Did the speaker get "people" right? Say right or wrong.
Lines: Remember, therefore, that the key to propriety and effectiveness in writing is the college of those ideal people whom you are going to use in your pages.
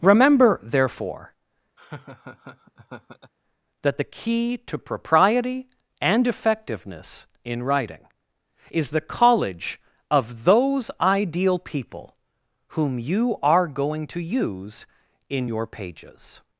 right